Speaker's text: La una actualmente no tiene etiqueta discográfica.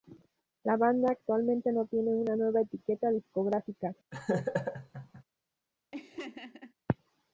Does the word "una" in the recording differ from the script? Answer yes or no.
yes